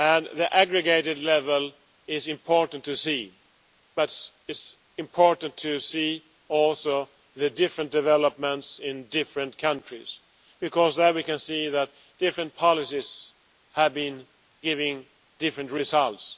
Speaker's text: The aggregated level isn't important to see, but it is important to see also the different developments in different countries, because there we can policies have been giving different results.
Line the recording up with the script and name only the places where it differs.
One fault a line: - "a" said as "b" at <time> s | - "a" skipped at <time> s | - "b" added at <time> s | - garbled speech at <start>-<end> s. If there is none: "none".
- "isn't" said as "is" at 2.1 s
- "see that different" added at 11.4 s